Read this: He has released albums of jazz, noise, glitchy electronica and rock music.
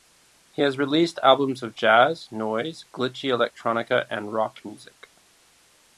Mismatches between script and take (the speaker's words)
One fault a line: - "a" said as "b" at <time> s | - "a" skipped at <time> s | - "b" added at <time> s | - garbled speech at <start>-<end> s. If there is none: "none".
none